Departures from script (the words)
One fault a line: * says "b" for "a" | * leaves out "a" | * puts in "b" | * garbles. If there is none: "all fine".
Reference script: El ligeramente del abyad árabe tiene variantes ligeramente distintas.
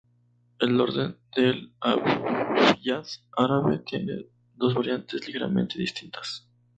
* says "orden" for "ligeramente"
* puts in "dos"